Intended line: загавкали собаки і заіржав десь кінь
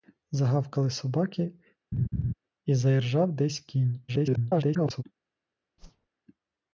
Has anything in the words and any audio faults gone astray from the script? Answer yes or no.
yes